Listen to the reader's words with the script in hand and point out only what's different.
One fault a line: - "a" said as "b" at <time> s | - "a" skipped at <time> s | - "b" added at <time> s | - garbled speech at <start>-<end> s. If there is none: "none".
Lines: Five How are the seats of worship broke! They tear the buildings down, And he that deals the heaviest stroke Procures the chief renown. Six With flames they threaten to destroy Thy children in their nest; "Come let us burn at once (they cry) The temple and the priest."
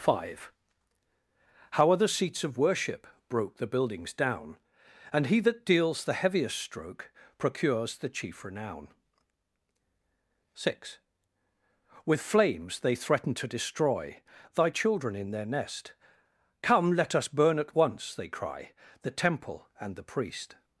- "They tear" skipped at 3.6 s